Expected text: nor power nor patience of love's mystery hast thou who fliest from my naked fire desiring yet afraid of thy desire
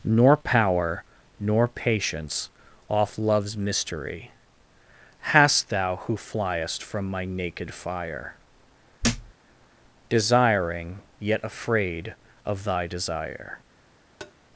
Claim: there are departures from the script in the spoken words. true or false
true